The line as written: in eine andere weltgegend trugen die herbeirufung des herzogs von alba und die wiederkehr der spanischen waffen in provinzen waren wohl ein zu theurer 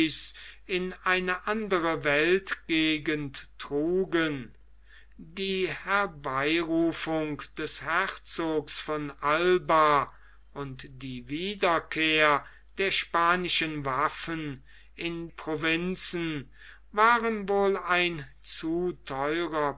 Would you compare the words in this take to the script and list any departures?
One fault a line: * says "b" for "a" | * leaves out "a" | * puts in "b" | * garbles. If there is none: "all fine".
all fine